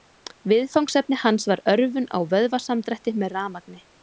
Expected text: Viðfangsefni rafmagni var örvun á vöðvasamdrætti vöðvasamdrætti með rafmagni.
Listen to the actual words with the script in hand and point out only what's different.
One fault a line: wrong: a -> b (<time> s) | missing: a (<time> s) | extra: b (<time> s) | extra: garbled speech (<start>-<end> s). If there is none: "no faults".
wrong: rafmagni -> hans (1.2 s)
missing: vöðvasamdrætti (3.2 s)